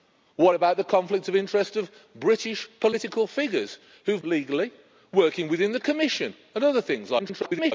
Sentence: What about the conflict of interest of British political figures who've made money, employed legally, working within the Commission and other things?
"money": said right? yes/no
no